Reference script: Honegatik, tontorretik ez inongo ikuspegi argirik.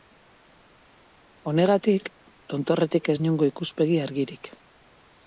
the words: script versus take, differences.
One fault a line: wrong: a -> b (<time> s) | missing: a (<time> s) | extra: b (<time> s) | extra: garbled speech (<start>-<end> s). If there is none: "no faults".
no faults